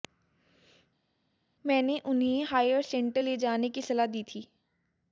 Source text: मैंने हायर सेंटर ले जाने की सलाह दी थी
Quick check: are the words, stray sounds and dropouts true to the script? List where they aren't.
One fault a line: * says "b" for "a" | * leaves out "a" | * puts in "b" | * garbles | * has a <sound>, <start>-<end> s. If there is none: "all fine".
* puts in "उन्हें"